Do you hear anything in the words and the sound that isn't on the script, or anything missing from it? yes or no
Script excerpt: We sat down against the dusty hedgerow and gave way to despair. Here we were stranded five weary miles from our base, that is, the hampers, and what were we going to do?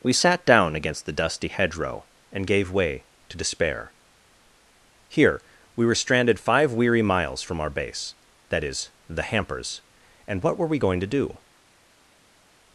no